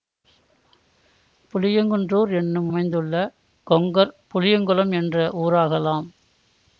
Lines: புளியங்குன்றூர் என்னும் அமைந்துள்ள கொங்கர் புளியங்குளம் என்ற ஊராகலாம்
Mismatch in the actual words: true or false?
false